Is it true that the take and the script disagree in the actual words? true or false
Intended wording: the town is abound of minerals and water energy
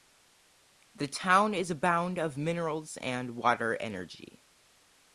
false